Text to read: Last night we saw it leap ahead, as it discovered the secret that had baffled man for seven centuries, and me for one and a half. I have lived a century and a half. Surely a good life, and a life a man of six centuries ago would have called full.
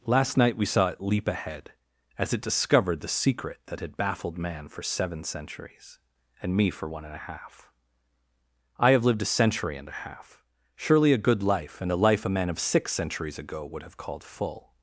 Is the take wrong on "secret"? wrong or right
right